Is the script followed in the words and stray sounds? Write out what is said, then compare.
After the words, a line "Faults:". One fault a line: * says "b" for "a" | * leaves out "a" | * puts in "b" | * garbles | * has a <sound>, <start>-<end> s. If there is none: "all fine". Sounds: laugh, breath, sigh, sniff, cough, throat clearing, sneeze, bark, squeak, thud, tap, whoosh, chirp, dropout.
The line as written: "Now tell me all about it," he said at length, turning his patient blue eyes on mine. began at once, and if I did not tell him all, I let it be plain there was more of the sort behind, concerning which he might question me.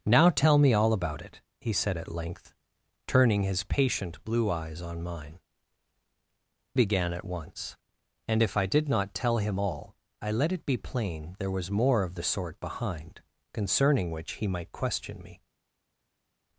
"Now tell me all about it," he said at length, turning his patient blue eyes on mine. began at once, and if I did not tell him all, I let it be plain there was more of the sort behind, concerning which he might question me.
Faults:
all fine